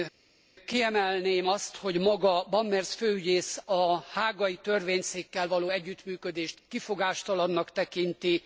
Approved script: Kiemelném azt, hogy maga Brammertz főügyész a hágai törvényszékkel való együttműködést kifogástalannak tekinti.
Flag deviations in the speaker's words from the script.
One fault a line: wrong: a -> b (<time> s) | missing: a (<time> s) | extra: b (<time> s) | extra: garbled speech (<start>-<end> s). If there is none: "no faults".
no faults